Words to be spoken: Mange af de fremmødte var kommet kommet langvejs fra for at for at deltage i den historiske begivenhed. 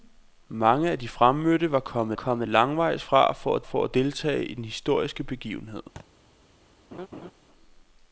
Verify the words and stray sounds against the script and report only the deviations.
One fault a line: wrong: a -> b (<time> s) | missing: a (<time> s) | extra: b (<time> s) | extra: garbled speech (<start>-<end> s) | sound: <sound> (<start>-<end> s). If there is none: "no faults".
sound: thud (6.0-6.1 s)
sound: laugh (6.9-7.3 s)